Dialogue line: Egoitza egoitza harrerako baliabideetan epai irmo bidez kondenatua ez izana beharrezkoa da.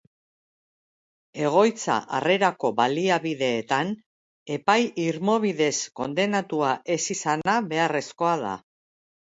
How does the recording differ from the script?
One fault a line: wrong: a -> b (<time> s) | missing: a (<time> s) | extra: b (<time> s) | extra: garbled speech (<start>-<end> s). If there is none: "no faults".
missing: egoitza (2.0 s)